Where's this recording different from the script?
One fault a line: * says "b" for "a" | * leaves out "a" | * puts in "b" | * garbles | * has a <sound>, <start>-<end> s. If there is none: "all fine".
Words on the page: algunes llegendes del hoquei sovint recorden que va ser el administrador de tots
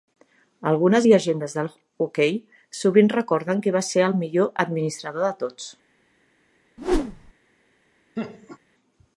* puts in "millor"
* has a whoosh, 6.8-7.3 s
* has a laugh, 8.2-8.6 s